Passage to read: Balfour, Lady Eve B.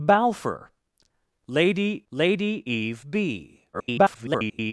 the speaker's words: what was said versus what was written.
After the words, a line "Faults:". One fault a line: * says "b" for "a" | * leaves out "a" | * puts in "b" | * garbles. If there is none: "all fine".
Balfour, Lady Lady Eve B. [garbled]
Faults:
* puts in "Lady"
* garbles